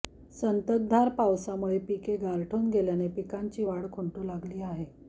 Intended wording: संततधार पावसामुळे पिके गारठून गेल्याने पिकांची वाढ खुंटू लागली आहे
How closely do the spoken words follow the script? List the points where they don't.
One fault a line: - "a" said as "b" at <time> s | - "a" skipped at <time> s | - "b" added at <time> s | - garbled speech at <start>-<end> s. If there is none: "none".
none